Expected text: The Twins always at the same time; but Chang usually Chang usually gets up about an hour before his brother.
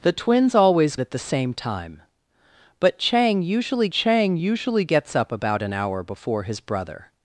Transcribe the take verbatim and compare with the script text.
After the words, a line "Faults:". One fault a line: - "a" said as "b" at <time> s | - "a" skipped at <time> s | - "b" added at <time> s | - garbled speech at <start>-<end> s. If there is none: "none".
The Twins always at the same time; but Chang usually Chang usually gets up about an hour before his brother.
Faults:
none